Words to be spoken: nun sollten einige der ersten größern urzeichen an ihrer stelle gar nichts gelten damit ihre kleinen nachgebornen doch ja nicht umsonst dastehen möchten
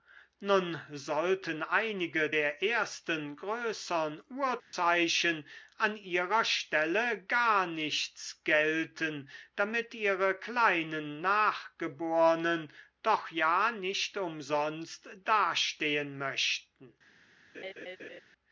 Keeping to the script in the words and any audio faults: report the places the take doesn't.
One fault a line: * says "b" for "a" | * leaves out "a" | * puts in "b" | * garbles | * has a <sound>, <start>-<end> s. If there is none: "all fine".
* has a dropout, 4.6-4.7 s
* has a laugh, 17.5-18.2 s